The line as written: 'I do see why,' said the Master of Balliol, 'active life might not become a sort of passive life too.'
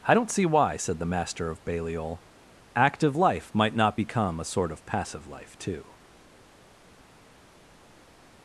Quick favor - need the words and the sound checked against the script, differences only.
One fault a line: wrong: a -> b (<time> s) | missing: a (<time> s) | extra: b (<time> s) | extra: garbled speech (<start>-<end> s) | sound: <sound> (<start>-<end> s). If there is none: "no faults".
wrong: do -> don't (0.1 s)